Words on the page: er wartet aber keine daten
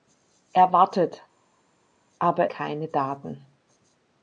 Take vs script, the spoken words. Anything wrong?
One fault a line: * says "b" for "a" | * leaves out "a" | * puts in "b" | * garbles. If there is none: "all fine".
all fine